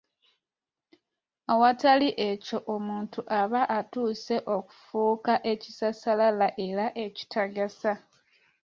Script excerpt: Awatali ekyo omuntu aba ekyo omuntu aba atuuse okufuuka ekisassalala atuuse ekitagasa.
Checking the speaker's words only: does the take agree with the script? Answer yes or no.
no